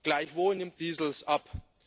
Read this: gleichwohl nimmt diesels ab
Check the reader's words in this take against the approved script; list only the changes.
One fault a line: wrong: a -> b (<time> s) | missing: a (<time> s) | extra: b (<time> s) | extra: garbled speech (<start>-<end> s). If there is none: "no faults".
no faults